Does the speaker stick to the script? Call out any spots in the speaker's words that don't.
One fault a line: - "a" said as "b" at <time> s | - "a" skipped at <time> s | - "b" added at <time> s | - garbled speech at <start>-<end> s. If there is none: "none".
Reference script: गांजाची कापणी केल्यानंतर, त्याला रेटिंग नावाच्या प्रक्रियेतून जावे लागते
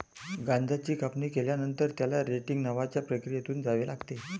none